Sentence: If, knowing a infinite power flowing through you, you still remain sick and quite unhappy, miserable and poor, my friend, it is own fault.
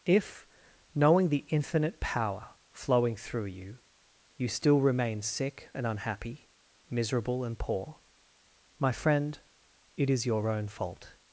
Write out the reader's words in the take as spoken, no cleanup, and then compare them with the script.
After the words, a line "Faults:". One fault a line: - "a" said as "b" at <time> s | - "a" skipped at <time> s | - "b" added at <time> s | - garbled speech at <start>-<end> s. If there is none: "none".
If, knowing the infinite power flowing through you, you still remain sick and unhappy, miserable and poor, my friend, it is your own fault.
Faults:
- "a" said as "the" at 1.3 s
- "quite" skipped at 5.8 s
- "your" added at 10.2 s